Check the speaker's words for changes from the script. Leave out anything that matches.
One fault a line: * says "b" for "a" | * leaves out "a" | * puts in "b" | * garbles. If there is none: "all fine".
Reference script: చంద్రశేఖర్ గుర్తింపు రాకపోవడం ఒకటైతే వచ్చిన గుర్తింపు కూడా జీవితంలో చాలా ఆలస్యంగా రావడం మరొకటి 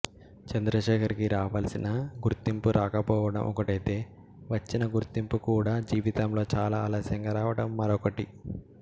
* puts in "కి రావలసిన"